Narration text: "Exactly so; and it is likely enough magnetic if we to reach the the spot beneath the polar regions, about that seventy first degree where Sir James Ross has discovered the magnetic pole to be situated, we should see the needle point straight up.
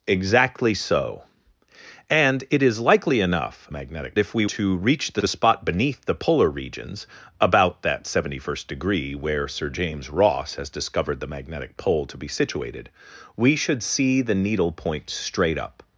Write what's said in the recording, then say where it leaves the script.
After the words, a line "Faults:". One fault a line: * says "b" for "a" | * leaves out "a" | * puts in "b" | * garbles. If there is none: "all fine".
"Exactly so; and it is likely enough magnetic if we to reach the the spot beneath the polar regions, about that seventy first degree where Sir James Ross has discovered the magnetic pole to be situated, we should see the needle point straight up.
Faults:
all fine